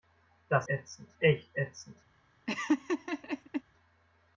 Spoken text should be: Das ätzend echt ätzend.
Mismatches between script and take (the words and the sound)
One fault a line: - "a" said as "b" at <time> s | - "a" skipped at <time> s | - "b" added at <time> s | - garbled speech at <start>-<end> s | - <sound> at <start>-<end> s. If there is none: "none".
- laugh at 2.5-3.6 s